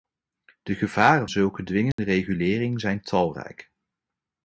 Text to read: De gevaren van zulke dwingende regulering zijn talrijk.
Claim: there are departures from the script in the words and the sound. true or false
true